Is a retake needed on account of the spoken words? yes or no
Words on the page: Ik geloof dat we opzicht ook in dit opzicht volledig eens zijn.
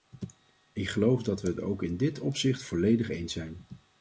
yes